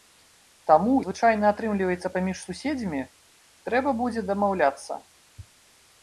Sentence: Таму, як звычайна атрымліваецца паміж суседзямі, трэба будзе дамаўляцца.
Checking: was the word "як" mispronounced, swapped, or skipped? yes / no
yes